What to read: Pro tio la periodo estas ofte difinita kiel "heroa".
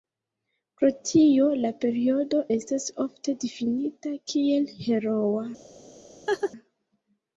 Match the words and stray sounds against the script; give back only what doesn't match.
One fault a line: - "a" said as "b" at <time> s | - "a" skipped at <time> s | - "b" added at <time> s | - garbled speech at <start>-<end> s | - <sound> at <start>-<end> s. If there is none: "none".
- laugh at 6.3-6.5 s